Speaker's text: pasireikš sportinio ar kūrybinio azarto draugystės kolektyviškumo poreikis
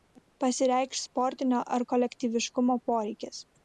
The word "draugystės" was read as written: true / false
false